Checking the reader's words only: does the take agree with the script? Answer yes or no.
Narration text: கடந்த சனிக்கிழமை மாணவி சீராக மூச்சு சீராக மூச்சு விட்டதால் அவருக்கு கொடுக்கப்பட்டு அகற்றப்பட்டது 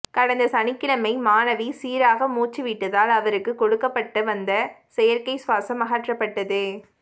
no